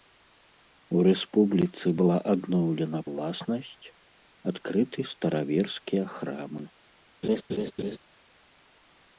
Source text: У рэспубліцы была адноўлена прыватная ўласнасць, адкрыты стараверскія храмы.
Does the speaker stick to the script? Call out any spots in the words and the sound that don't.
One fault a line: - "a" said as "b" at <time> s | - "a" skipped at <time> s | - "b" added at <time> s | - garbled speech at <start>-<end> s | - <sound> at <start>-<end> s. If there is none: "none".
- "прыватная" skipped at 3.0 s
- laugh at 7.2-8.0 s